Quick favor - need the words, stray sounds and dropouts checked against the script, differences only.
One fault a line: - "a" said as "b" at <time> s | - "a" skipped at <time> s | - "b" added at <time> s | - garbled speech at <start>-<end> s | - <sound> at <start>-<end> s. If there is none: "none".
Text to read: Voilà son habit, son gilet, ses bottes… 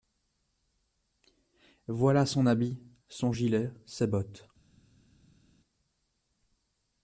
none